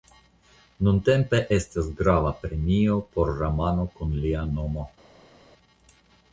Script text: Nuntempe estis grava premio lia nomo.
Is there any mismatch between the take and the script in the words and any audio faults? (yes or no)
yes